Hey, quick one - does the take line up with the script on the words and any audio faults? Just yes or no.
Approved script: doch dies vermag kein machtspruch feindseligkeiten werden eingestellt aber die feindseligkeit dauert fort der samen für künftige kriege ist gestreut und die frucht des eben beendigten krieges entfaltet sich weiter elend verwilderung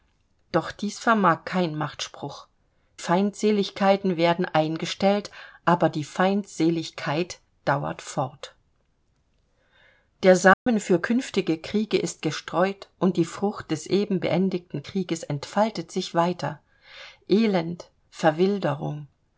no